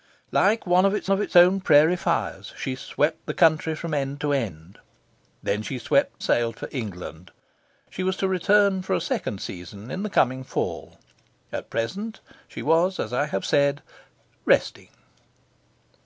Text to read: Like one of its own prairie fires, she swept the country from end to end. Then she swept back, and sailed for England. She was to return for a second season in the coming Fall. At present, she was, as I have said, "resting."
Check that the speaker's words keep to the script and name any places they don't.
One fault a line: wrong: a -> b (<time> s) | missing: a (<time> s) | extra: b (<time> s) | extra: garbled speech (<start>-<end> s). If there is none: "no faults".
extra: of its (1.1 s)
missing: back and (6.2 s)